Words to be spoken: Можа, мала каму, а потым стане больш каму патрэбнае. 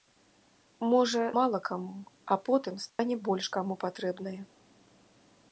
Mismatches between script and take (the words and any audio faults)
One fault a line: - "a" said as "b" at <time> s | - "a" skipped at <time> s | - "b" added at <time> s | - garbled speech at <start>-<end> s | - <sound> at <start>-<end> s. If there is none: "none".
- dropout at 2.9-3.0 s